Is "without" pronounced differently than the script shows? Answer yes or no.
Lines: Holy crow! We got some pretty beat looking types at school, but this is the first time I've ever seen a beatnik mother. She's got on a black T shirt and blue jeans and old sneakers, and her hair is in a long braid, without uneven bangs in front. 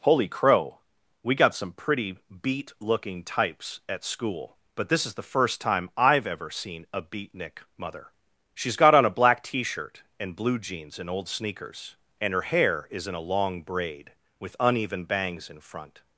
yes